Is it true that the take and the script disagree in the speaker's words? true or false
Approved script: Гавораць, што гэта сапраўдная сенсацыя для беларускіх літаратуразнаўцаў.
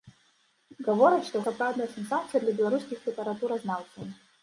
true